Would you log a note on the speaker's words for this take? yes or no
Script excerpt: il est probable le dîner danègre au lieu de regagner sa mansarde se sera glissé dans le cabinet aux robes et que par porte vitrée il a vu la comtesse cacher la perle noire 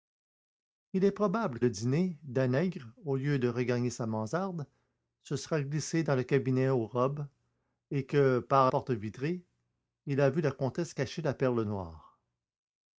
no